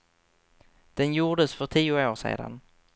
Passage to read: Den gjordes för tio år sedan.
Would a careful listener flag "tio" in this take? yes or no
no